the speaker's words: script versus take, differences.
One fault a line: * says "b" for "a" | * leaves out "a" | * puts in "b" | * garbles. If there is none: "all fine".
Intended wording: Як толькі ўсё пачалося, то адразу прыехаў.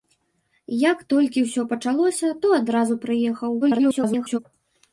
* garbles